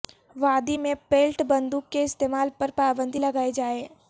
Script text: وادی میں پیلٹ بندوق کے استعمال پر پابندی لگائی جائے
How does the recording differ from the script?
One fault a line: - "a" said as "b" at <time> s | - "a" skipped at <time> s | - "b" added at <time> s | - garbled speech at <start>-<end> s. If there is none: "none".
none